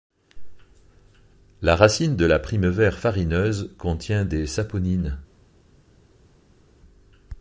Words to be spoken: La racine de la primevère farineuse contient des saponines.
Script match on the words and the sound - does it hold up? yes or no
yes